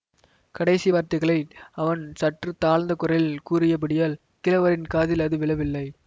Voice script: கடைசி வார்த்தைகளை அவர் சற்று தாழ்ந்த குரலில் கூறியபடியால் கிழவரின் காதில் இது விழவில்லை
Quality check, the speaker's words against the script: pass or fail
fail